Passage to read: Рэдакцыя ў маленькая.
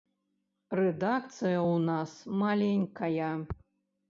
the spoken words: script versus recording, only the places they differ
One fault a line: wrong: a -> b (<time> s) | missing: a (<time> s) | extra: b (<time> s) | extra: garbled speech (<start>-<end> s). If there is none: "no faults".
extra: нас (1.9 s)